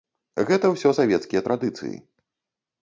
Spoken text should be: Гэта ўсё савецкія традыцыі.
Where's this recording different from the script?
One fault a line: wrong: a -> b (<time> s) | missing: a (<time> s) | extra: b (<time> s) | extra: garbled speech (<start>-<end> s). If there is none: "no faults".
no faults